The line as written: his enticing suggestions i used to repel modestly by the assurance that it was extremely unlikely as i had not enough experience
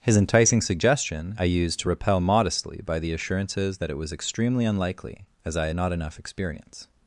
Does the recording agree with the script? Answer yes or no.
no